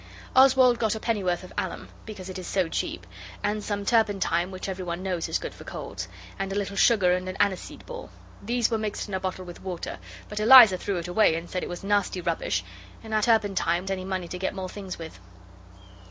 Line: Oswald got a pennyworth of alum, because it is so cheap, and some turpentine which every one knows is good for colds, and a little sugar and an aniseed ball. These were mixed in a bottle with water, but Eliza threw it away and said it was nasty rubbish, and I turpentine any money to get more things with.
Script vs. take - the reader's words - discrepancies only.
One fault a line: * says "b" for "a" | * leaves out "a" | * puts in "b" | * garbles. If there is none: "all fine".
all fine